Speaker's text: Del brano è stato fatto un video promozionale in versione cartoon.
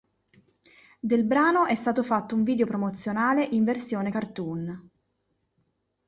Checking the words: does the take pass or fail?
pass